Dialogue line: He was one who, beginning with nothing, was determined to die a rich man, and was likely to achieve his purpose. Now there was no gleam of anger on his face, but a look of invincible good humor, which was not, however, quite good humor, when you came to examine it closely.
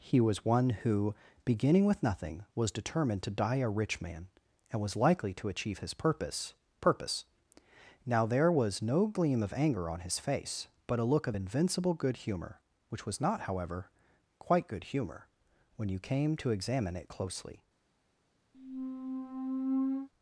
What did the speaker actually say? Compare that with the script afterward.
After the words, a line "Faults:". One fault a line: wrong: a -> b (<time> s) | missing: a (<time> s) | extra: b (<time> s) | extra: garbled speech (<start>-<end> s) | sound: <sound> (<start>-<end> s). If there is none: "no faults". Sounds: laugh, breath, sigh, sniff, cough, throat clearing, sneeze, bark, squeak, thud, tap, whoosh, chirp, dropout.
He was one who, beginning with nothing, was determined to die a rich man, and was likely to achieve his purpose purpose. Now there was no gleam of anger on his face, but a look of invincible good humor, which was not, however, quite good humor, when you came to examine it closely.
Faults:
extra: purpose (6.8 s)
sound: squeak (18.5-20.1 s)